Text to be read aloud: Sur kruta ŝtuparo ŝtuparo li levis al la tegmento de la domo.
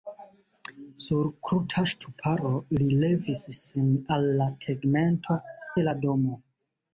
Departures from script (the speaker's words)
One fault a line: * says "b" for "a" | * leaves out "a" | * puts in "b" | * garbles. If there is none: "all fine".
* leaves out "ŝtuparo"
* puts in "sin"